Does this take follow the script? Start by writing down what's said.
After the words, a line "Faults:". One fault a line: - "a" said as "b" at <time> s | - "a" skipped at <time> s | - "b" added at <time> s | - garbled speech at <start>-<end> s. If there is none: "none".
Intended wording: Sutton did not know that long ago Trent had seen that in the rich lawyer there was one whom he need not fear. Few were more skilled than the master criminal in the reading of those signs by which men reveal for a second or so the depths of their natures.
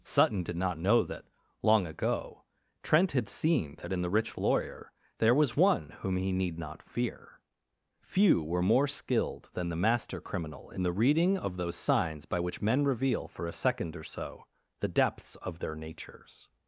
Sutton did not know that long ago Trent had seen that in the rich lawyer there was one whom he need not fear. Few were more skilled than the master criminal in the reading of those signs by which men reveal for a second or so the depths of their natures.
Faults:
none